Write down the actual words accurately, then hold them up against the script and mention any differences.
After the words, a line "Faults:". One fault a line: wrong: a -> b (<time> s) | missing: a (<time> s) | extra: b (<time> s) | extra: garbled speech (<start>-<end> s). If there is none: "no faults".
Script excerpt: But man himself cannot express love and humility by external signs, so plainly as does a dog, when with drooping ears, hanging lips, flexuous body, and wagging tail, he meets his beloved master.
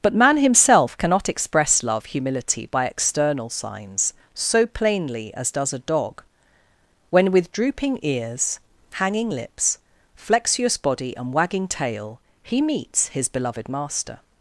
But man himself cannot express love humility by external signs, so plainly as does a dog, when with drooping ears, hanging lips, flexuous body, and wagging tail, he meets his beloved master.
Faults:
missing: and (2.1 s)